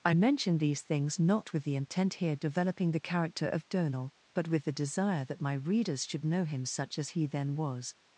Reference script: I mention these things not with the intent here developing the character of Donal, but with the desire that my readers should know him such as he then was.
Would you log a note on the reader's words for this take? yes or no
no